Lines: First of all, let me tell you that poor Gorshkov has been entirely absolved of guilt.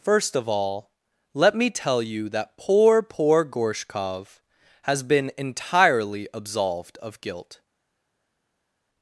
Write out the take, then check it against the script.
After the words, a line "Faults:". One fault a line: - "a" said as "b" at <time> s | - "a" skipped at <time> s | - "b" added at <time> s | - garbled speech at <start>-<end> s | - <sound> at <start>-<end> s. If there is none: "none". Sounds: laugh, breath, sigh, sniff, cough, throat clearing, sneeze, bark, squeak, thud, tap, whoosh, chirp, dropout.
First of all, let me tell you that poor poor Gorshkov has been entirely absolved of guilt.
Faults:
- "poor" added at 3.0 s